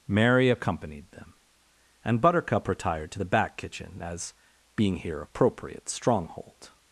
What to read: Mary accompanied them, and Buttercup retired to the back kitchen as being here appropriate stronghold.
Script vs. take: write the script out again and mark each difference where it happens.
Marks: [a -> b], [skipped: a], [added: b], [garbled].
Mary accompanied them, and Buttercup retired to the back kitchen as being here appropriate stronghold.